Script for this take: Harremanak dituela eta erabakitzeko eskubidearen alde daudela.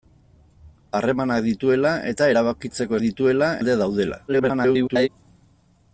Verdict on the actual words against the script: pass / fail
fail